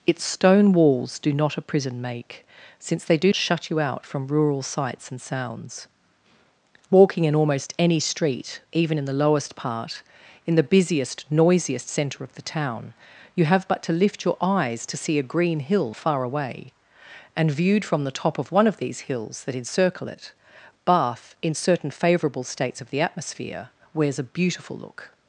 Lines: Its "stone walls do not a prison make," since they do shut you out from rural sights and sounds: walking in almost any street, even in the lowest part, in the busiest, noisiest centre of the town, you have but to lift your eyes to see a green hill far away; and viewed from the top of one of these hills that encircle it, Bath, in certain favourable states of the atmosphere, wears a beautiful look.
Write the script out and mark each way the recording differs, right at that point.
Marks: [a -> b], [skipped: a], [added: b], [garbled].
Its "stone walls do not a prison make," since they do shut you out from rural sights and sounds: walking in almost any street, even in the lowest part, in the busiest, noisiest centre of the town, you have but to lift your eyes to see a green hill far away; and viewed from the top of one of these hills that encircle it, Bath, in certain favourable states of the atmosphere, wears a beautiful look.